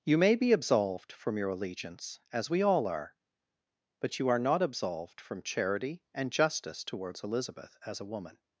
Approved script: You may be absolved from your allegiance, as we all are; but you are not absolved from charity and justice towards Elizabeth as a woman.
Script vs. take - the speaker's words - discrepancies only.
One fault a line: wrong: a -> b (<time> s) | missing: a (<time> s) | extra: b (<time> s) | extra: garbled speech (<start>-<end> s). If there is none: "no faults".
no faults